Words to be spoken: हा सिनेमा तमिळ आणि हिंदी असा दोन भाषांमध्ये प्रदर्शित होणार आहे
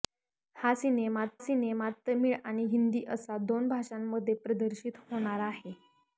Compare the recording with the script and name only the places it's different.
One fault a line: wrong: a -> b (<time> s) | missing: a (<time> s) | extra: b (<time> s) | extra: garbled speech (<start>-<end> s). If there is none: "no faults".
extra: सिनेमा (1.4 s)